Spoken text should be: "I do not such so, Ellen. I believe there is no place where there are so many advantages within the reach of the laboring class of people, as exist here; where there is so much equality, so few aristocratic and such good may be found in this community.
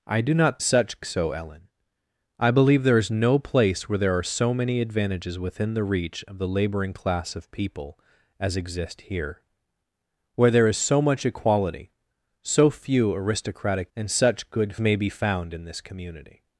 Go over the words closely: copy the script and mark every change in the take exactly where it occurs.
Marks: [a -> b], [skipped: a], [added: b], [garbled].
"I do not such so, Ellen. I believe there is no place where there are so many advantages within the reach of the laboring class of people, as exist here; where there is so much equality, so few aristocratic and such good may be found in this community.